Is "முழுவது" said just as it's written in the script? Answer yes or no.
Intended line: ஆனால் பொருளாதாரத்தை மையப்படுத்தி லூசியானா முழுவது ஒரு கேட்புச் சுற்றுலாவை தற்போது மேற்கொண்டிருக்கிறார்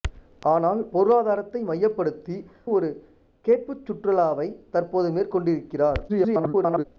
no